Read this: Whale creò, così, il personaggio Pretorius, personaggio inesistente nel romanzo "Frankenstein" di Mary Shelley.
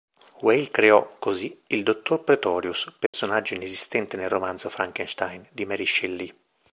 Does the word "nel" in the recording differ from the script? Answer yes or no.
no